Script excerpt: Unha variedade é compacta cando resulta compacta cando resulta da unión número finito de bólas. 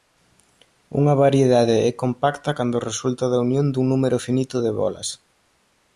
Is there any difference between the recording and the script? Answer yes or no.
yes